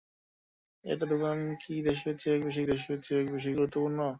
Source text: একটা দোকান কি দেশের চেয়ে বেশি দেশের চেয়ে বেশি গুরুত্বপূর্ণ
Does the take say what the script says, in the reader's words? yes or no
yes